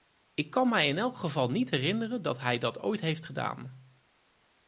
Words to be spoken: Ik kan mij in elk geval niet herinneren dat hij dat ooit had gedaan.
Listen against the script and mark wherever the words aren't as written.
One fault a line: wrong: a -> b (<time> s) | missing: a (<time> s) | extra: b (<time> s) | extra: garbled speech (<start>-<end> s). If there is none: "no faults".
wrong: had -> heeft (3.0 s)